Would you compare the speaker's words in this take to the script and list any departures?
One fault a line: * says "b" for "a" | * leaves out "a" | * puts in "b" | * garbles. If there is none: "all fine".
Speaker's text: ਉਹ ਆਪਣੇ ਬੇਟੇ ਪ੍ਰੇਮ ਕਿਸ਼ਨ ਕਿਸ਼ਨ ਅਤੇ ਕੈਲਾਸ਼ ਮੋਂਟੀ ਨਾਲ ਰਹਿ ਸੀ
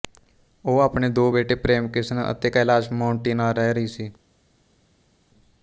* puts in "ਦੋ"
* leaves out "ਕਿਸ਼ਨ"
* puts in "ਰਹੀ"